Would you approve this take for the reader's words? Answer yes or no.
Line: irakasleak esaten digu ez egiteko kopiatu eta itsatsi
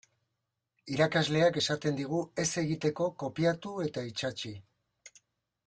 yes